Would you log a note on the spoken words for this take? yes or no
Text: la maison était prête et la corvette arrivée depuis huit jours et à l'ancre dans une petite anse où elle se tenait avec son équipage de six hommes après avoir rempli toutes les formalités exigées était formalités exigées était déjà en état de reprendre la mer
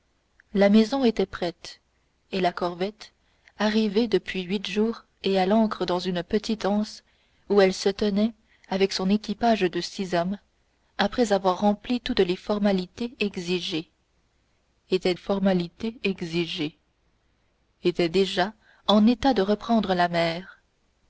no